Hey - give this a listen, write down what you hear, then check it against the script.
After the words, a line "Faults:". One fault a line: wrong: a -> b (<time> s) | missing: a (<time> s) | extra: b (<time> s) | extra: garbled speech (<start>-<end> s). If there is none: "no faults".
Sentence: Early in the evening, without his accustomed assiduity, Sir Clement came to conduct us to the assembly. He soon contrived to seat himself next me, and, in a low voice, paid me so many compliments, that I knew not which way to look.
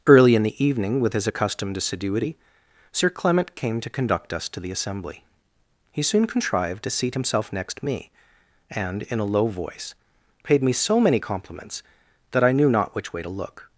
Early in the evening, with his accustomed assiduity, Sir Clement came to conduct us to the assembly. He soon contrived to seat himself next me, and, in a low voice, paid me so many compliments, that I knew not which way to look.
Faults:
wrong: without -> with (1.0 s)